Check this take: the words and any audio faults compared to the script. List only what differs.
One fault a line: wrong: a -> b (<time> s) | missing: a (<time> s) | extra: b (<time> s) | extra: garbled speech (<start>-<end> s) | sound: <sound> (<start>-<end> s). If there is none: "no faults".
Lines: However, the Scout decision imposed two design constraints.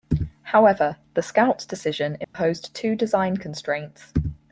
sound: dropout (2.2-2.3 s)